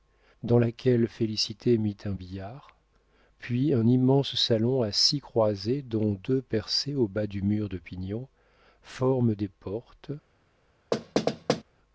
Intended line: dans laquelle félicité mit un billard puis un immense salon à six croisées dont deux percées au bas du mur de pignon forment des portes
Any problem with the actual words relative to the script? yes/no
no